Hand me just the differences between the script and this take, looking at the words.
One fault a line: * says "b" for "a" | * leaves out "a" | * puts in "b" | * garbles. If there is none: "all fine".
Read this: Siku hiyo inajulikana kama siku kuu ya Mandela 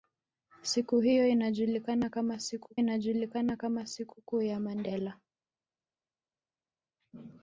* puts in "inajulikana kama siku"